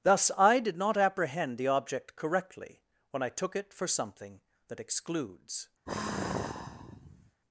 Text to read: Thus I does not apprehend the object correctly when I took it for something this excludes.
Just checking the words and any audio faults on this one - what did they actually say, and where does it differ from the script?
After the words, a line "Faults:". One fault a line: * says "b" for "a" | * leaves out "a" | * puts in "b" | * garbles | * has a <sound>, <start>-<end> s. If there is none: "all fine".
Thus I did not apprehend the object correctly when I took it for something that excludes.
Faults:
* says "did" for "does"
* says "that" for "this"
* has a sigh, 5.9-7.4 s